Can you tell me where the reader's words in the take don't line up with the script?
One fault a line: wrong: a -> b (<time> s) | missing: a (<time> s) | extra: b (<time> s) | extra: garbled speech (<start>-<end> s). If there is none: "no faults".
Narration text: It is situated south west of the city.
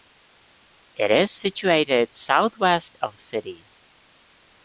missing: the (3.2 s)